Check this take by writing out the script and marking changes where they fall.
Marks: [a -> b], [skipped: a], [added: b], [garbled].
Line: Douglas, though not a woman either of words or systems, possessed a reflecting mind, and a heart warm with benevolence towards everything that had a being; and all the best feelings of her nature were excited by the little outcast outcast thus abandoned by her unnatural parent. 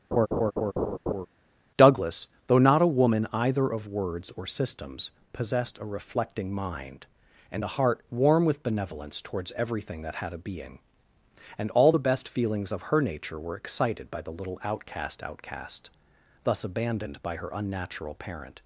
Douglas, though not a woman either of words or systems, possessed a reflecting mind, and a heart warm with benevolence towards everything that had a being; and all the best feelings of her nature were excited by the little outcast outcast thus abandoned by her unnatural parent.